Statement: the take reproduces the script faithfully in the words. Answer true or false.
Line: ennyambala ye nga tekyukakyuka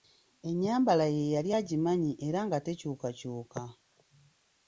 false